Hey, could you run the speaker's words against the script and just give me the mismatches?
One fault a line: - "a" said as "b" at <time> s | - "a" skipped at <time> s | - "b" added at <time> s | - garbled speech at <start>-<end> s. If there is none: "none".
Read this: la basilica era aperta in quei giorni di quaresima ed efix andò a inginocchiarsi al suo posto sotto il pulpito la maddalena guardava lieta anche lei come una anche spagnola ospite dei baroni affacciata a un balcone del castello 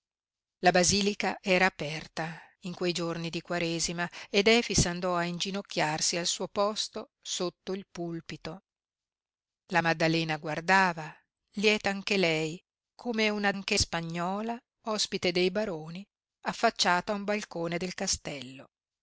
none